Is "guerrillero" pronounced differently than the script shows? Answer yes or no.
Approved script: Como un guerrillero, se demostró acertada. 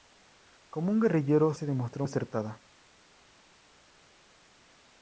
no